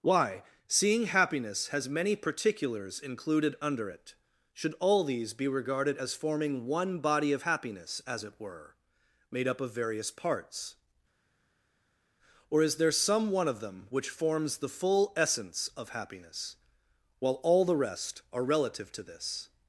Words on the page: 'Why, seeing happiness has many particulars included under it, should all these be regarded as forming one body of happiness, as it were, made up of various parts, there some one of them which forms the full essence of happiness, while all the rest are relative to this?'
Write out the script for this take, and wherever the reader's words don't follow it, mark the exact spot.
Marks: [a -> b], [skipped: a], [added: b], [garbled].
'Why, seeing happiness has many particulars included under it, should all these be regarded as forming one body of happiness, as it were, made up of various parts, [added: or is] there some one of them which forms the full essence of happiness, while all the rest are relative to this?'